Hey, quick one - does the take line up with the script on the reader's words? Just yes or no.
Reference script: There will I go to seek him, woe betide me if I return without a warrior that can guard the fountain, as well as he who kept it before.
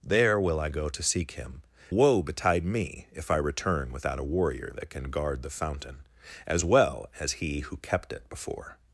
yes